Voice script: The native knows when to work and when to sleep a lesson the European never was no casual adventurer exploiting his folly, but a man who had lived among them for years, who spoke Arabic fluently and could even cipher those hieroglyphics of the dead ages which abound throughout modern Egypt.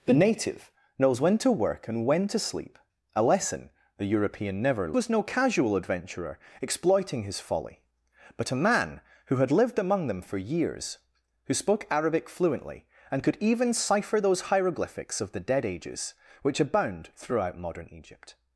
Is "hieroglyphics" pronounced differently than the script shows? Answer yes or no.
no